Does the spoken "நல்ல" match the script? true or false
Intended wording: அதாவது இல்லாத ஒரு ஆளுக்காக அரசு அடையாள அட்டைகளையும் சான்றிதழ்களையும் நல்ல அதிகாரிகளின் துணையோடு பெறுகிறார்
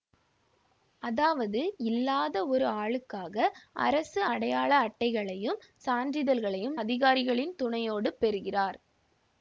false